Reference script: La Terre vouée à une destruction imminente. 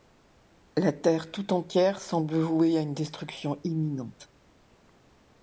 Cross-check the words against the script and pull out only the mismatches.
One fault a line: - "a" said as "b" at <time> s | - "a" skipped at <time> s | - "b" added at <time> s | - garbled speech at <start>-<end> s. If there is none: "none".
- "tout entière semble" added at 1.3 s